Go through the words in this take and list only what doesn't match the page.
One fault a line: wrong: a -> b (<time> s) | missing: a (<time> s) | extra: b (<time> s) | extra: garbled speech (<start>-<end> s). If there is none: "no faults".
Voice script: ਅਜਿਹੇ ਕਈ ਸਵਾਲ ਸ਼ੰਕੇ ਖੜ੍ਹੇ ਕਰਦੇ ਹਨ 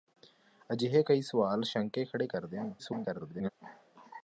extra: garbled speech (2.8-3.5 s)